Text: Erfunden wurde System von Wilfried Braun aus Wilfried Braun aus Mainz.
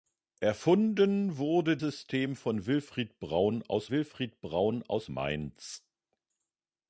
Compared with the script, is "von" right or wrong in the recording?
right